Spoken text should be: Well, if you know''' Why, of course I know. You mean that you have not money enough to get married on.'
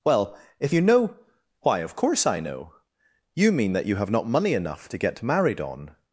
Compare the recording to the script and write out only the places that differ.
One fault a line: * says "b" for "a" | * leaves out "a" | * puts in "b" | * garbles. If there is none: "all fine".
all fine